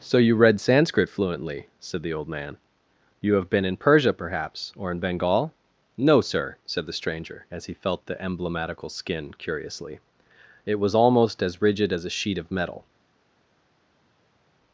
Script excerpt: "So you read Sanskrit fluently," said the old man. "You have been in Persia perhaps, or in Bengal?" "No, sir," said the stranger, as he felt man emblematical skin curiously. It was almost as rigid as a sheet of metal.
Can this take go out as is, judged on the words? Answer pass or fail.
fail